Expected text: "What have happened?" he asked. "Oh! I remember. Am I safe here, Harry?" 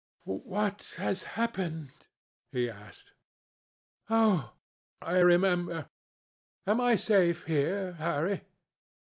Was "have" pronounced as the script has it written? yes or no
no